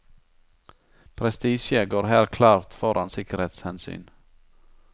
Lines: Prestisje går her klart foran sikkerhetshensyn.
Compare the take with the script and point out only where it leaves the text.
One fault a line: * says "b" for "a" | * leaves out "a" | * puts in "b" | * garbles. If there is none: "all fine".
all fine